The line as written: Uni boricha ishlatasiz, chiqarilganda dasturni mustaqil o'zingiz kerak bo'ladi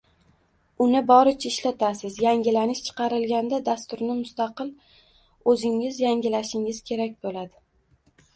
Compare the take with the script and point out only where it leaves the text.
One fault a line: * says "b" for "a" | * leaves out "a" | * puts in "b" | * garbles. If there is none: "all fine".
* puts in "yangilanish"
* puts in "yangilashingiz"